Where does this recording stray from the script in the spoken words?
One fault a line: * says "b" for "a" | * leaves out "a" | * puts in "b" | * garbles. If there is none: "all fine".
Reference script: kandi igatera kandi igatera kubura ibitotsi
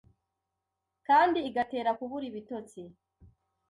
* leaves out "kandi igatera"